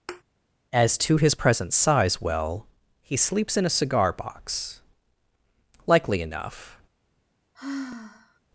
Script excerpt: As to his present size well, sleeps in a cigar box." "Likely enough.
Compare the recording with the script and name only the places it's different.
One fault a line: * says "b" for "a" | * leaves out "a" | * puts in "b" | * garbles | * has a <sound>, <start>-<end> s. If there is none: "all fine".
* has a thud, 0.1-0.2 s
* puts in "he"
* has a sigh, 7.5-8.4 s